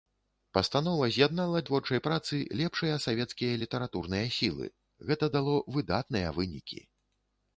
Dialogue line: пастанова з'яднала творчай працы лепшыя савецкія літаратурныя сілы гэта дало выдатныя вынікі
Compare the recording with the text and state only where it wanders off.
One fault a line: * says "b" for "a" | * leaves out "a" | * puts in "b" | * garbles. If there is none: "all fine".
all fine